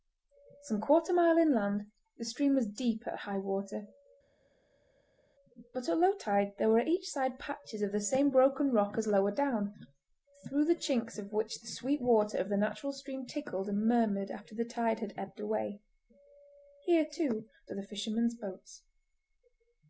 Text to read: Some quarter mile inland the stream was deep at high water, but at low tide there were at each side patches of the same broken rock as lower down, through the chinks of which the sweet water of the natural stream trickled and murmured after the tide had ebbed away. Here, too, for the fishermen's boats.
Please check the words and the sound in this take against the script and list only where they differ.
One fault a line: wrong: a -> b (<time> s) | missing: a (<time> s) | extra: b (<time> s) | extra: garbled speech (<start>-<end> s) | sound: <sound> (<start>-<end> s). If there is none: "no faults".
no faults